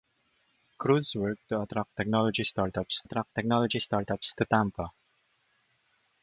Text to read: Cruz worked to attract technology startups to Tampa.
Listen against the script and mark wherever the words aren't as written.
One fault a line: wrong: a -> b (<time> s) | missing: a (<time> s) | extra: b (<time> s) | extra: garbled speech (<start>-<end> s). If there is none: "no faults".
extra: attract technology startups (3.0 s)